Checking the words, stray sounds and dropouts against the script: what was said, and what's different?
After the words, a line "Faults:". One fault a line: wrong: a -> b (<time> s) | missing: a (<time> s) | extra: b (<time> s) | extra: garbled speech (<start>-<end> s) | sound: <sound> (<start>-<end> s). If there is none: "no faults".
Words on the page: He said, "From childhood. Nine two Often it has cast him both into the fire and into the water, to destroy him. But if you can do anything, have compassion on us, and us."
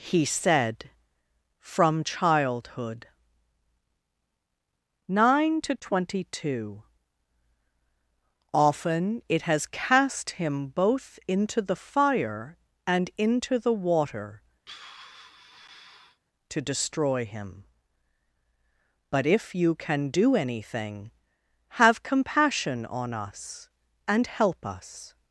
He said, "From childhood. Nine to twenty two Often it has cast him both into the fire and into the water, to destroy him. But if you can do anything, have compassion on us, and help us."
Faults:
extra: to twenty (5.6 s)
sound: sigh (14.7-16.2 s)
extra: help (24.2 s)